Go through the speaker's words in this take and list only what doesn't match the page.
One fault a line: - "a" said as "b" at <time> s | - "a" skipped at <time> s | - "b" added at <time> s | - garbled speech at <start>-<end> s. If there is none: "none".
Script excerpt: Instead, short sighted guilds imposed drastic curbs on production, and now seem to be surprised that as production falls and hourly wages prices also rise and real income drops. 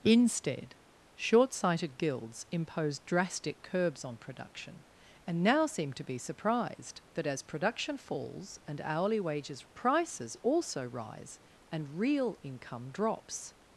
none